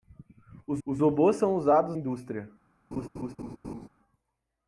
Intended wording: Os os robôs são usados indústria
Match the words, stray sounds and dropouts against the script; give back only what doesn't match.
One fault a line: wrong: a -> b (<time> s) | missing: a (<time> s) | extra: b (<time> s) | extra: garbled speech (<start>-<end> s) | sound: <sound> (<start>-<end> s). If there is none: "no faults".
sound: laugh (2.9-3.9 s)